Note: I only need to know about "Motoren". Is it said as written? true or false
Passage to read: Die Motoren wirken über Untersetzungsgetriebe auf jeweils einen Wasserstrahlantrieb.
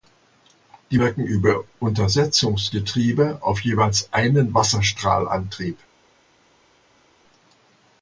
false